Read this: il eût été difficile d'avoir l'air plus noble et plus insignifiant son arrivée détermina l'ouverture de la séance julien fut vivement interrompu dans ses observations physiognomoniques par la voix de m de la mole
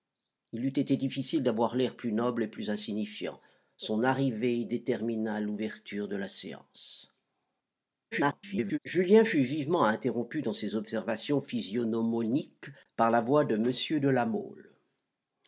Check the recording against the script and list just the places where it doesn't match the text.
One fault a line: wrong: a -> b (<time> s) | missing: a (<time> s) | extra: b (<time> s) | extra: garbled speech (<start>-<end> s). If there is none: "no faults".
extra: garbled speech (8.1-8.8 s)